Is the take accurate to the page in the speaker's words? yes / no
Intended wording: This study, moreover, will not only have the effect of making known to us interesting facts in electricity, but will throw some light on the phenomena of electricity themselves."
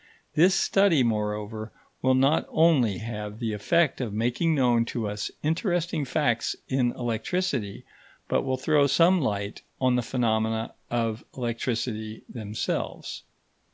yes